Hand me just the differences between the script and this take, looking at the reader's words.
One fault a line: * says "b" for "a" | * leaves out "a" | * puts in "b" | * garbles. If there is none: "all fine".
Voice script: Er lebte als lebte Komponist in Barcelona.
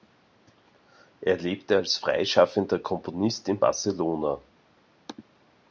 * says "freischaffender" for "lebte"